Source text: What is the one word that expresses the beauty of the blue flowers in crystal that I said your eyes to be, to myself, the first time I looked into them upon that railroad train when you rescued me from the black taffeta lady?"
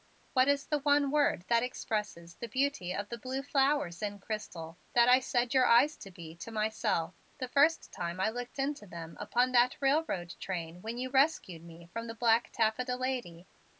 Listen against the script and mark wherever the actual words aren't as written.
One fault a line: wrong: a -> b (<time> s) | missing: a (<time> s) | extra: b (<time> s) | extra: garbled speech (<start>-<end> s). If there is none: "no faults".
no faults